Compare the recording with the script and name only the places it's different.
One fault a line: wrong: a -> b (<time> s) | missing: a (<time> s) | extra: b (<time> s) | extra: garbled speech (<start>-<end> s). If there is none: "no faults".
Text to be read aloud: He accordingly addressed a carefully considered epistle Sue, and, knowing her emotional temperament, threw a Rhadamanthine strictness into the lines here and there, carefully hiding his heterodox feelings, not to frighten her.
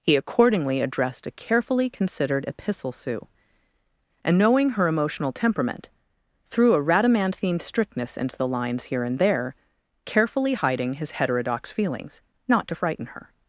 no faults